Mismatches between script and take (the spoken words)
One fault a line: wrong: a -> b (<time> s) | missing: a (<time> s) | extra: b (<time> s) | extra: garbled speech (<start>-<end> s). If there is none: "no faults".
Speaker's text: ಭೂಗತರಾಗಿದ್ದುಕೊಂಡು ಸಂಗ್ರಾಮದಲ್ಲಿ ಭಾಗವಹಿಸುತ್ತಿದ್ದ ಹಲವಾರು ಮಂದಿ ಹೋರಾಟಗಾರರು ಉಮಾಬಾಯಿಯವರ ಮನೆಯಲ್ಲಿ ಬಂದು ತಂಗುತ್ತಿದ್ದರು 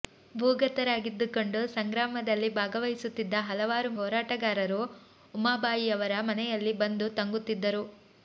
missing: ಮಂದಿ (3.9 s)